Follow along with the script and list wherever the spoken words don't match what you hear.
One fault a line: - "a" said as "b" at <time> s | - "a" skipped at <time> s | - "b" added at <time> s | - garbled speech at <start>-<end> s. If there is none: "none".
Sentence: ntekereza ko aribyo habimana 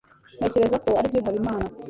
none